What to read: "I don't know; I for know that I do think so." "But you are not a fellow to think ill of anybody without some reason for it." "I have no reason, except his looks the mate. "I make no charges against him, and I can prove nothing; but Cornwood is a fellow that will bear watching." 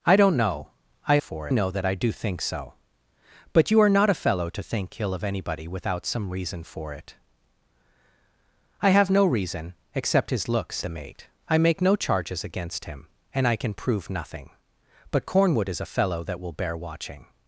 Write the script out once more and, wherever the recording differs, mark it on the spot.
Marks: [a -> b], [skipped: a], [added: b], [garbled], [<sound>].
"I don't know; I for know that I do think so." "But you are not a fellow to think ill of anybody without some reason for it." "I have no reason, except his looks the mate. "I make no charges against him, and I can prove nothing; but Cornwood is a fellow that will bear watching."